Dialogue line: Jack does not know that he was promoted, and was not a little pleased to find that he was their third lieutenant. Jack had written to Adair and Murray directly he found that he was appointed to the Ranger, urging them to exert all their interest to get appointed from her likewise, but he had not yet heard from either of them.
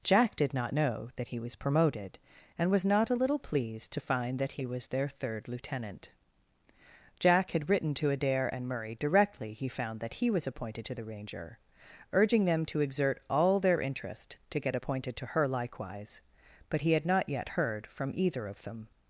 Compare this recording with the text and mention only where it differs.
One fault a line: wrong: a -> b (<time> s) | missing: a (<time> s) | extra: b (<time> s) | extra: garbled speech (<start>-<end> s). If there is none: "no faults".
wrong: does -> did (0.3 s)
wrong: from -> to (15.2 s)